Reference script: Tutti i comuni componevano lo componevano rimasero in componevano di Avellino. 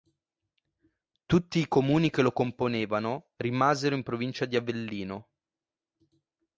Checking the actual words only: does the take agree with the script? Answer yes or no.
no